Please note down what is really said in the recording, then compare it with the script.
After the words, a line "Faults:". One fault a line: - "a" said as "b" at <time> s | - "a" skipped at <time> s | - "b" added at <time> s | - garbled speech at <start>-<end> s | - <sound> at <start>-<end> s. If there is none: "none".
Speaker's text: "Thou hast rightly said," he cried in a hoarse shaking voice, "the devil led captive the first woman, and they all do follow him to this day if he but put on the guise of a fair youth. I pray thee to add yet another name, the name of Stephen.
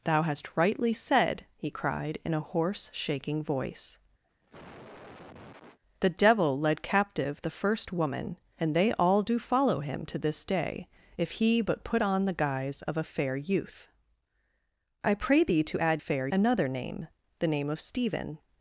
"Thou hast rightly said," he cried in a hoarse shaking voice, "the devil led captive the first woman, and they all do follow him to this day if he but put on the guise of a fair youth. I pray thee to add fair another name, the name of Stephen.
Faults:
- cough at 4.2-5.8 s
- "yet" said as "fair" at 16.0 s